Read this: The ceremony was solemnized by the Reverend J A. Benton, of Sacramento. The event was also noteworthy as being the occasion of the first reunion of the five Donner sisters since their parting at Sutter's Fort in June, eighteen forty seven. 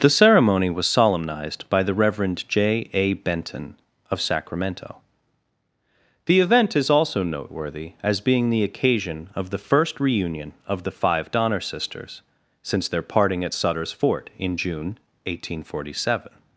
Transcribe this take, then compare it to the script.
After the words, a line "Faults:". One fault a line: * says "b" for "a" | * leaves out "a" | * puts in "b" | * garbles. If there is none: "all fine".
The ceremony was solemnized by the Reverend J A. Benton, of Sacramento. The event is also noteworthy as being the occasion of the first reunion of the five Donner sisters since their parting at Sutter's Fort in June, eighteen forty seven.
Faults:
* says "is" for "was"